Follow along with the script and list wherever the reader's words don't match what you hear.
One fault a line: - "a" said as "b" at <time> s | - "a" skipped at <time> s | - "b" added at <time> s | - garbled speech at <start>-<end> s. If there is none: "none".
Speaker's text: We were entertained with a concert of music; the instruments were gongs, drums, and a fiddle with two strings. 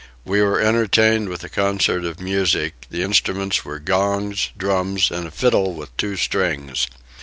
none